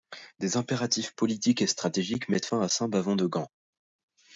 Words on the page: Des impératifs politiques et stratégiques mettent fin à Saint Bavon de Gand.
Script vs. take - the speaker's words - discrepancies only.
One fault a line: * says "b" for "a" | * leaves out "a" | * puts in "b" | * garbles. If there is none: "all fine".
all fine